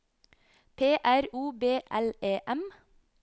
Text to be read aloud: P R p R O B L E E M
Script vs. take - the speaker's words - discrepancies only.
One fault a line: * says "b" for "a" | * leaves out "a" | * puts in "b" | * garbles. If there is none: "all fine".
* leaves out "p R"
* leaves out "E"